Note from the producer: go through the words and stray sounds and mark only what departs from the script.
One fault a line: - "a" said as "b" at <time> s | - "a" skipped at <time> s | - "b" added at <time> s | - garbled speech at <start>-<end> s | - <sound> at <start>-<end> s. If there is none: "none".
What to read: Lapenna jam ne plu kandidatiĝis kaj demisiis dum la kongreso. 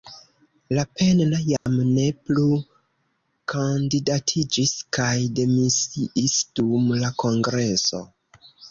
- dropout at 1.6-1.7 s